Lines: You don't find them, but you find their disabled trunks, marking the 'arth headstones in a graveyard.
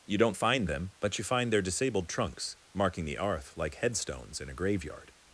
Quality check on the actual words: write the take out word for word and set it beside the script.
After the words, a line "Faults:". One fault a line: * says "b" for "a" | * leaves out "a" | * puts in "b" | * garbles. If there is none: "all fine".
You don't find them, but you find their disabled trunks, marking the 'arth like headstones in a graveyard.
Faults:
* puts in "like"